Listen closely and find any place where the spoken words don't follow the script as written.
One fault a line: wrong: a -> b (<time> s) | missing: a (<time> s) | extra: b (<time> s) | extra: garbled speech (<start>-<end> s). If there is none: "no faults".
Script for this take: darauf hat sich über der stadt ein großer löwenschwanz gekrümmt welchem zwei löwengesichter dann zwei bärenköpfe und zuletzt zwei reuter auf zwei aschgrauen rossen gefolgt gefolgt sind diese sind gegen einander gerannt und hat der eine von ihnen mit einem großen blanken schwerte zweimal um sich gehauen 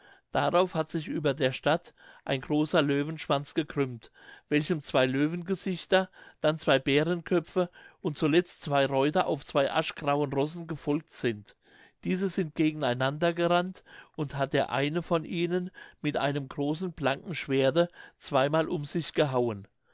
missing: gefolgt (11.1 s)